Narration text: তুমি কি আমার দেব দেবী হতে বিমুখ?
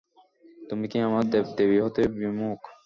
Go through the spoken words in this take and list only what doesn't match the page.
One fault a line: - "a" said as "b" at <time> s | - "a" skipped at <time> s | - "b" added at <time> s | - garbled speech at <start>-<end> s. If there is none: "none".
none